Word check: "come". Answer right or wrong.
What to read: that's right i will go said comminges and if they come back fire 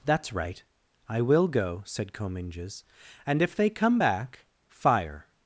right